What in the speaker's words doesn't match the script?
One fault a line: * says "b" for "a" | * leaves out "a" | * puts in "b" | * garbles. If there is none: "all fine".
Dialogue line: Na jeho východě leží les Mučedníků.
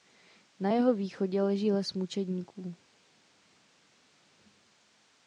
all fine